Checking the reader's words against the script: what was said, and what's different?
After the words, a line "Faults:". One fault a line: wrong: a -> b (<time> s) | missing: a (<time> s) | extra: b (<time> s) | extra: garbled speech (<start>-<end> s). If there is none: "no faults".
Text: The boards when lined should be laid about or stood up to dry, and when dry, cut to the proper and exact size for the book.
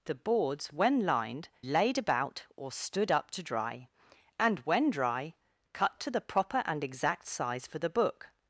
The boards when lined laid about or stood up to dry, and when dry, cut to the proper and exact size for the book.
Faults:
missing: should be (1.5 s)